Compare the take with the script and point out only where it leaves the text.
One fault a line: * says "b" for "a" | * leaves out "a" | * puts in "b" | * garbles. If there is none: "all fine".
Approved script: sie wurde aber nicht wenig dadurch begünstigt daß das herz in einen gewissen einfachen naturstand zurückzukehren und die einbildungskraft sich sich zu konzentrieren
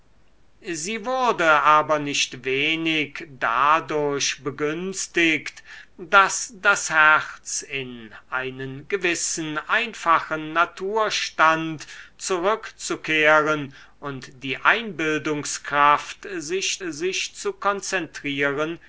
all fine